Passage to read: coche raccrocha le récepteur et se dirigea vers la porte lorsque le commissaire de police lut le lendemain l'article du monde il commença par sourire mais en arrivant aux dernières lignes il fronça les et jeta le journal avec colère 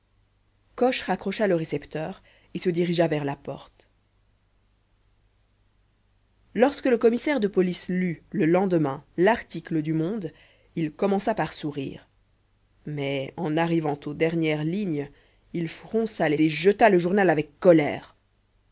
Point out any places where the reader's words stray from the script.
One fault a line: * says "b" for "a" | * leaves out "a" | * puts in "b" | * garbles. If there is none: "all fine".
all fine